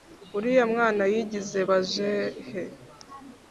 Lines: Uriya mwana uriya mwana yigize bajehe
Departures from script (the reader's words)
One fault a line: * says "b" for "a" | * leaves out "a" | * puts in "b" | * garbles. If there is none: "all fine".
* leaves out "uriya mwana"